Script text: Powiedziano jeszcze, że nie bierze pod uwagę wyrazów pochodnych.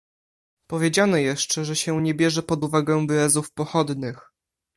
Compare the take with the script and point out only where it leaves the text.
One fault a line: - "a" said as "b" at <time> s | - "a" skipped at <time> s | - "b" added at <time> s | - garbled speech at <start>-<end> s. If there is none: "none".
- "się" added at 1.8 s